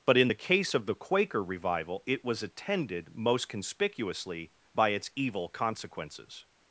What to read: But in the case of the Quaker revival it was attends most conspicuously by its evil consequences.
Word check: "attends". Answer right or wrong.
wrong